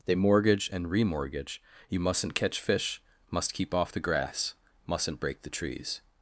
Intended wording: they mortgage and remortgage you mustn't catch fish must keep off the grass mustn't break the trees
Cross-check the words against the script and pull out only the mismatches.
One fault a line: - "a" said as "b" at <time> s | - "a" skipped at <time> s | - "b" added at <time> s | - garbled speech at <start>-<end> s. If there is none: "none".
none